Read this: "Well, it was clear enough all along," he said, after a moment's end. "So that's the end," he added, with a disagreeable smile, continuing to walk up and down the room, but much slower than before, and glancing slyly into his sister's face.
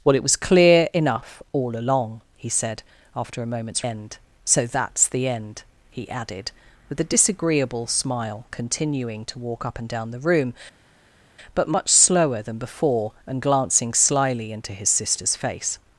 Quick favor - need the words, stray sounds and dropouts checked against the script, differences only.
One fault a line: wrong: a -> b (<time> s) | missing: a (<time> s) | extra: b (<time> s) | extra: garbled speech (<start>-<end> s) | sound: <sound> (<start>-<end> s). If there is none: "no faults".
no faults